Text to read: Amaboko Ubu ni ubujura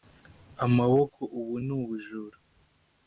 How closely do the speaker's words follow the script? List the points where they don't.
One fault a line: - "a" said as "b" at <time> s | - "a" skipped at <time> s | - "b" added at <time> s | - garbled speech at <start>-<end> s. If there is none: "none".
none